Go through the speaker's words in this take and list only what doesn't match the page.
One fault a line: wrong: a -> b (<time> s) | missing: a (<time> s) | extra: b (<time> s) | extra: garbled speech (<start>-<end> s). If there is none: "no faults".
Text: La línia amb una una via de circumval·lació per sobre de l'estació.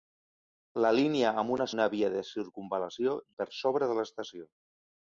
no faults